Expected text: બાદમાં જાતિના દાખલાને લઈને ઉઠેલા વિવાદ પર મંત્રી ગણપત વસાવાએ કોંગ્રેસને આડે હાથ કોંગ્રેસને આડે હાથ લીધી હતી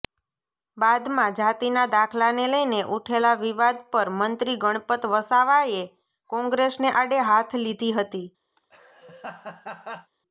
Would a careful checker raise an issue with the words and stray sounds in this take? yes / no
yes